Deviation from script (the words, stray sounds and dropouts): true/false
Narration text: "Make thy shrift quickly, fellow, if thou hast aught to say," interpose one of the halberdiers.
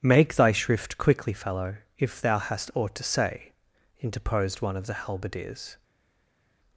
true